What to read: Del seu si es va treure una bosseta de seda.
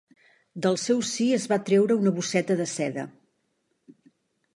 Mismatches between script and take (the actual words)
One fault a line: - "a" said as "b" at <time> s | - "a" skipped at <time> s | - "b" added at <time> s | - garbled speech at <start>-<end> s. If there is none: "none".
none